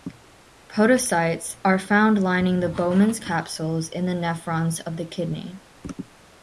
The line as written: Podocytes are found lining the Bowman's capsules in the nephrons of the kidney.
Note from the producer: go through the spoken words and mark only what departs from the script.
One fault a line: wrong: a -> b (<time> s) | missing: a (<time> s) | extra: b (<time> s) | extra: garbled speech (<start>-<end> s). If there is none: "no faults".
no faults